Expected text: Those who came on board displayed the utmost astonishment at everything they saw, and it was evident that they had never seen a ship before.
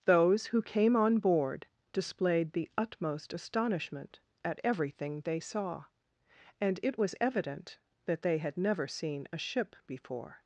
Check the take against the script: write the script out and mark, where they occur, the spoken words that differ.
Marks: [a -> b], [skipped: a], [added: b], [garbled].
Those who came on board displayed the utmost astonishment at everything they saw, and it was evident that they had never seen a ship before.